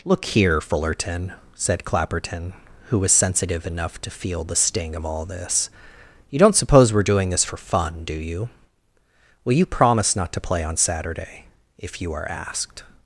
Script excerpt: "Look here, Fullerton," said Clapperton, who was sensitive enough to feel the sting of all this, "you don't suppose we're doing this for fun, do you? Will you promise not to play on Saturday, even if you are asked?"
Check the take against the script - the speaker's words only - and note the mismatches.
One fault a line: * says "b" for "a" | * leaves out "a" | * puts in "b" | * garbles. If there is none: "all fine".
* leaves out "even"